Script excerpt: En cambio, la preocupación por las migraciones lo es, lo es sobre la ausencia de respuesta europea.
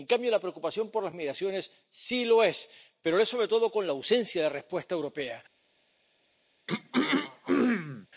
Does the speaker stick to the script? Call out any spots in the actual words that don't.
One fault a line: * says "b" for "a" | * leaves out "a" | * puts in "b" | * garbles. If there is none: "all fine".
* puts in "sí"
* puts in "pero"
* puts in "todo con"